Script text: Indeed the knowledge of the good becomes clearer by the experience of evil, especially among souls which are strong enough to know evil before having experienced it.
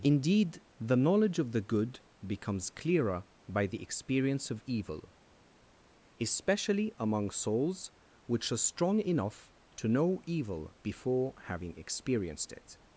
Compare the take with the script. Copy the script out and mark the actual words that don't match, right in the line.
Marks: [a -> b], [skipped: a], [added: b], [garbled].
Indeed the knowledge of the good becomes clearer by the experience of evil, especially among souls which are strong enough to know evil before having experienced it.